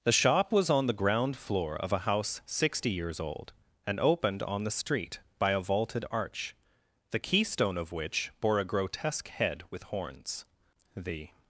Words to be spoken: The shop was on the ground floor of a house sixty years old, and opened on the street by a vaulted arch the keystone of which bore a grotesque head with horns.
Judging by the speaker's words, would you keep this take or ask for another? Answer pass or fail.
fail